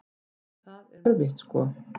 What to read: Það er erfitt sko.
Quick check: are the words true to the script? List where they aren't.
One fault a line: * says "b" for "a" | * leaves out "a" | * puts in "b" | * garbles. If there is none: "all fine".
all fine